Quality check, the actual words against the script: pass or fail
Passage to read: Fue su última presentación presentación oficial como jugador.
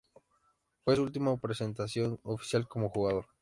fail